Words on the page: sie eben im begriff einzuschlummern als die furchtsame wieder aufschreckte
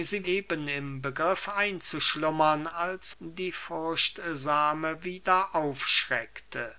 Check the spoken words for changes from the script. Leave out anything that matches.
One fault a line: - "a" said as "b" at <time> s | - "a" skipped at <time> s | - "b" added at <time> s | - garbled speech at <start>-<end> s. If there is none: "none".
none